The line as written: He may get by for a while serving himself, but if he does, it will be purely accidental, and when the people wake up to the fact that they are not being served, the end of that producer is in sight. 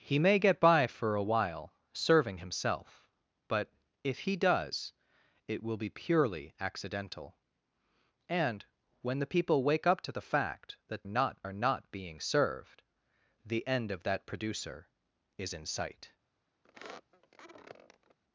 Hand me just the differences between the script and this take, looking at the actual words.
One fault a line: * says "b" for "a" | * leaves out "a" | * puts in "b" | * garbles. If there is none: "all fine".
* says "not" for "they"